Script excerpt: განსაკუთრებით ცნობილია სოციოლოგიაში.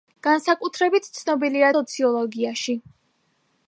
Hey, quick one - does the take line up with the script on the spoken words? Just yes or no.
yes